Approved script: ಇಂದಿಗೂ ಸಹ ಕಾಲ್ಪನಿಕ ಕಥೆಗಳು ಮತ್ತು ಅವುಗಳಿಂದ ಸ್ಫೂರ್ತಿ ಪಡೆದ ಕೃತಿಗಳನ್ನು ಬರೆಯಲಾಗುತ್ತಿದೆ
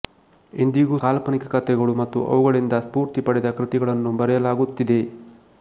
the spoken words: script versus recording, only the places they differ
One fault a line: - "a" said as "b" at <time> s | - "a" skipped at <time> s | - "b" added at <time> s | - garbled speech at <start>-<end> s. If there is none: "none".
- "ಸಹ" skipped at 1.0 s